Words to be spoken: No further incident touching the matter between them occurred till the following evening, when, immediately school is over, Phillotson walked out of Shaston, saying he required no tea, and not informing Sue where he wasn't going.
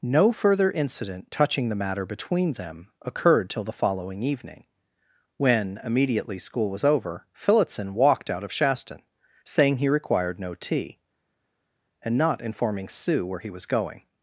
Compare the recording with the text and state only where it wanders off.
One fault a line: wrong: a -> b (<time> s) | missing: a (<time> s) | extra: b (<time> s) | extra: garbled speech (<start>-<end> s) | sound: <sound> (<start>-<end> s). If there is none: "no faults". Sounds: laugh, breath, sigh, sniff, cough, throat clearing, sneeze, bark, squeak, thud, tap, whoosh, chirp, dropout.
wrong: is -> was (6.7 s)
wrong: wasn't -> was (13.5 s)